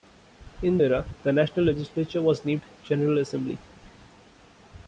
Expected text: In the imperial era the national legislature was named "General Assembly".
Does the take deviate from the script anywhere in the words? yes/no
yes